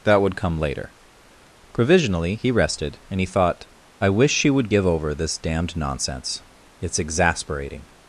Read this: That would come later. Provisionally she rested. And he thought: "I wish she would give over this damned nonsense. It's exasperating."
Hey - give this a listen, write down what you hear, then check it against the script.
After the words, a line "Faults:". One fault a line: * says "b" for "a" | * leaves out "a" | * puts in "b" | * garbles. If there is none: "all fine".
That would come later. Provisionally he rested. And he thought: "I wish she would give over this damned nonsense. It's exasperating."
Faults:
* says "he" for "she"